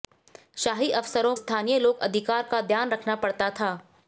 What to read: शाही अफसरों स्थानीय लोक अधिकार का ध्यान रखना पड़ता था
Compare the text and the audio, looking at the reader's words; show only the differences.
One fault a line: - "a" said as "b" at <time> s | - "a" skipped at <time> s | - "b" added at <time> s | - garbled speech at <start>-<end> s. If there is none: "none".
none